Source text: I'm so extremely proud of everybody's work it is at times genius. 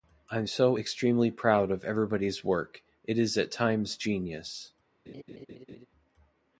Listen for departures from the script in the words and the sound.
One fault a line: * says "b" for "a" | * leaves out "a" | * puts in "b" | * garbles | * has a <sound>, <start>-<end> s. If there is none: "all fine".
* has a laugh, 5.1-5.9 s